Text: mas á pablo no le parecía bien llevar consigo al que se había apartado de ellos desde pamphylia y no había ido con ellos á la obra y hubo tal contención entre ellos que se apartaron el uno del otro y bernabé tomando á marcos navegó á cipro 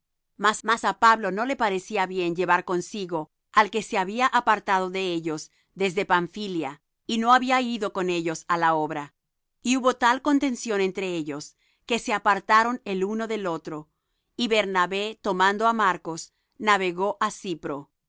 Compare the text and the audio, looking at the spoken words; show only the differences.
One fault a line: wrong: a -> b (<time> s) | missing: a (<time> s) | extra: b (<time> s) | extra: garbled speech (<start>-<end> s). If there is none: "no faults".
extra: mas (0.7 s)